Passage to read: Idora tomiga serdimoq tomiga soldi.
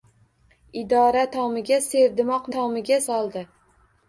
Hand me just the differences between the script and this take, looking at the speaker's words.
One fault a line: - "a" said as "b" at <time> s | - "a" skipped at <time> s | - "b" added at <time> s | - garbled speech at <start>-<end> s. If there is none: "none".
none